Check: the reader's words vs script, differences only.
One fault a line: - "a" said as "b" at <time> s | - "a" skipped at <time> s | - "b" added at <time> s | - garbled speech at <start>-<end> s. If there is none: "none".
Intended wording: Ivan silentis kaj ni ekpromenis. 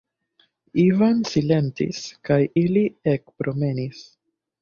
- "ni" said as "ili" at 2.6 s